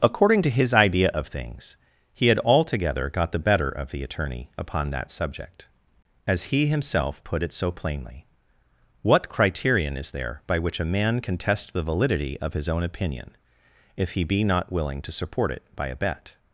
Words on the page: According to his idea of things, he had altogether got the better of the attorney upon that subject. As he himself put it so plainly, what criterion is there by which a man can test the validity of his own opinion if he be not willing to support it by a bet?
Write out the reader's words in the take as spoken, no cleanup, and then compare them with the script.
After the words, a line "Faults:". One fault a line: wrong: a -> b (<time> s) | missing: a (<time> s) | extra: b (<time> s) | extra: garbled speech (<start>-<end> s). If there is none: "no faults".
According to his idea of things, he had altogether got the better of the attorney upon that subject. As he himself put it so plainly, what criterion is there by which a man can test the validity of his own opinion if he be not willing to support it by a bet?
Faults:
no faults